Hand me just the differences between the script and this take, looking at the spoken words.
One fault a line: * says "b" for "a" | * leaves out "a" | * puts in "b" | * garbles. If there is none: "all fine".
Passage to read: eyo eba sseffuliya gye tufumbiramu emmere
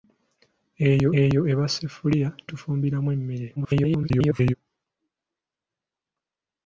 * puts in "eyo"
* leaves out "gye"
* garbles